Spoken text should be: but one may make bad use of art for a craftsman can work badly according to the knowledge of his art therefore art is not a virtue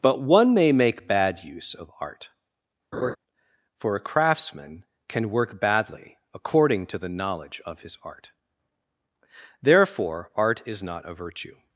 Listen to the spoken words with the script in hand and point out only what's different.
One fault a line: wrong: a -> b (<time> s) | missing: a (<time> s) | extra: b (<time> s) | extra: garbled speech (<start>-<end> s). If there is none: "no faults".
no faults